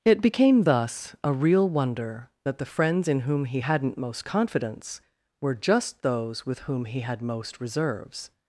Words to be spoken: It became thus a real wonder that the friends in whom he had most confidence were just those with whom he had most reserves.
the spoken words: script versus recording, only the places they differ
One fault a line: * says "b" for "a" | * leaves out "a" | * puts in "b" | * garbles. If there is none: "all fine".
* says "hadn't" for "had"